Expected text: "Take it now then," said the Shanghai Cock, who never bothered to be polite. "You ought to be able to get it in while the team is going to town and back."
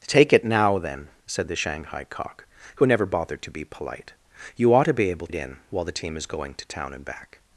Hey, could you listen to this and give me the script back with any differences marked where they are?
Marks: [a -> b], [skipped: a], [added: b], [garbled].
"Take it now then," said the Shanghai Cock, who never bothered to be polite. "You ought to be able [skipped: to get] it in while the team is going to town and back."